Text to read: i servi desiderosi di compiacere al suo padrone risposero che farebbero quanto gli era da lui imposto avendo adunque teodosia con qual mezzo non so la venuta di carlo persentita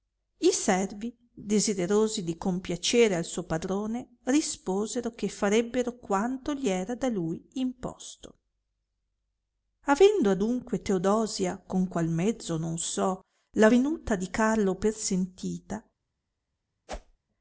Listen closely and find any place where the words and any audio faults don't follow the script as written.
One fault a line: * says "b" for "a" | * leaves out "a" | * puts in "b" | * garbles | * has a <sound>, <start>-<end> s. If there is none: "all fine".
* has a whoosh, 16.9-17.2 s